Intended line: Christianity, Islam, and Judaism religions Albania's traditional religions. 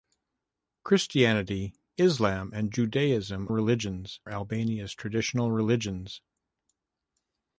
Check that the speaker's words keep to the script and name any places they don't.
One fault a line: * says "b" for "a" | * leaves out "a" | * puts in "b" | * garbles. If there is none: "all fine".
all fine